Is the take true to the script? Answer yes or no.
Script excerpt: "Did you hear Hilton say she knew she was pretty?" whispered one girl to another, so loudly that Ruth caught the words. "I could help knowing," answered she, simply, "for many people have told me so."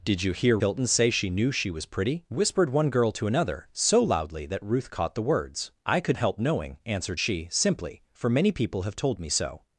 yes